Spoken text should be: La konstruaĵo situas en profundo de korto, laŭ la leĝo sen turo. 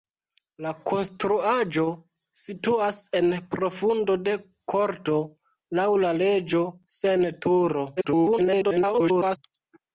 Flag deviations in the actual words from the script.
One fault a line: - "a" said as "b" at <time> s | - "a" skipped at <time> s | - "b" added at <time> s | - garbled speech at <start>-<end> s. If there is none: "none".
- garbled speech at 8.0-9.4 s